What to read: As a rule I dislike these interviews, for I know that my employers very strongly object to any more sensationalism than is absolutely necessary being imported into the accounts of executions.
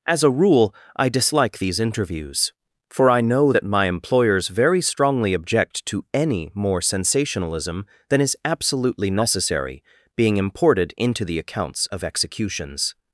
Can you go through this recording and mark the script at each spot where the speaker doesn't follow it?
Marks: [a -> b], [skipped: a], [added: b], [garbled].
As a rule I dislike these interviews, for I know that my employers very strongly object to any more sensationalism than is absolutely necessary being imported into the accounts of executions.